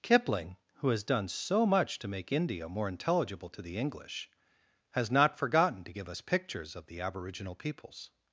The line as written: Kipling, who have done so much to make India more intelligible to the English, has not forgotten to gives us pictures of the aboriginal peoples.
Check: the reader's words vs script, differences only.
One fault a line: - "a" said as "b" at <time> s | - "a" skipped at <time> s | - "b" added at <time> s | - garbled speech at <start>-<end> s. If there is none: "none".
- "have" said as "has" at 0.9 s
- "gives" said as "give" at 5.9 s